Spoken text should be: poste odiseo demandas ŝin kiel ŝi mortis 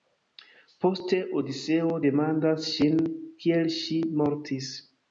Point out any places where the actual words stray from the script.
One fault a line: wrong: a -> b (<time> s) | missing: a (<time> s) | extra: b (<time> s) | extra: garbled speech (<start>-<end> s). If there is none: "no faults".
no faults